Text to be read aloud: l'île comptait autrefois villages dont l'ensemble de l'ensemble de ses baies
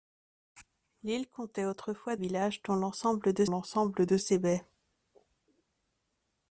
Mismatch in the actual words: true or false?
false